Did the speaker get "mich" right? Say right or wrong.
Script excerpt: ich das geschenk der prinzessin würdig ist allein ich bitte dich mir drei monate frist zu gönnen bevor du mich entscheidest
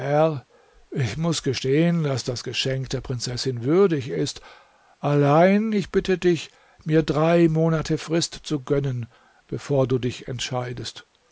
wrong